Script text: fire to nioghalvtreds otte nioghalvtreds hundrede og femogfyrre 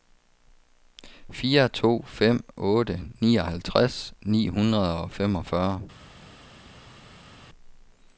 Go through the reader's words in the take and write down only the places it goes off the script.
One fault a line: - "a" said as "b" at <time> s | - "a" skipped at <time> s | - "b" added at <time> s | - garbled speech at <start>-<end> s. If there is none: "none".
- "nioghalvtreds" said as "fem" at 2.1 s
- "ni" added at 4.2 s